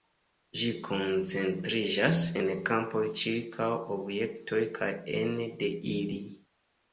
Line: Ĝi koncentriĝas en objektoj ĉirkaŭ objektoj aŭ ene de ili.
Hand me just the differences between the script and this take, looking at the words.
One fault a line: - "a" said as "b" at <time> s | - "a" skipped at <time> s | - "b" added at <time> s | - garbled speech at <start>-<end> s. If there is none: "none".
- "objektoj" said as "kampoj" at 2.7 s
- "aŭ" said as "kaj" at 4.8 s